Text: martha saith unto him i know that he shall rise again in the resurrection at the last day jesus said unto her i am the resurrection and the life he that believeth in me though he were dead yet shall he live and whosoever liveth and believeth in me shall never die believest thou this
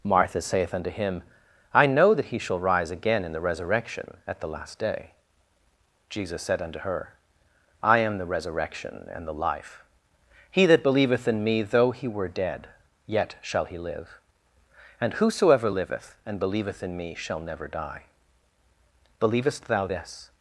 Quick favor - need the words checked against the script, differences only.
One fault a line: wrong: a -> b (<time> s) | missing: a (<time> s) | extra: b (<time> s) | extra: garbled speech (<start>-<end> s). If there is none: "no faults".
no faults